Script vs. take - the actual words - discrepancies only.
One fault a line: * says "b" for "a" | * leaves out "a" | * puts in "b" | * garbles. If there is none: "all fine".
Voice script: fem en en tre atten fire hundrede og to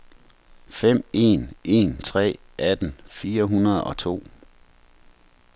all fine